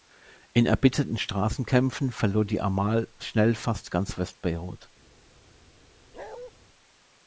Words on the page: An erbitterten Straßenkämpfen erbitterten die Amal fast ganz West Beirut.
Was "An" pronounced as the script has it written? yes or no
no